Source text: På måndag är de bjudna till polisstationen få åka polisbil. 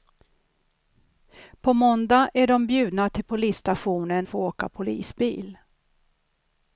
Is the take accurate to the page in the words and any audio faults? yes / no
yes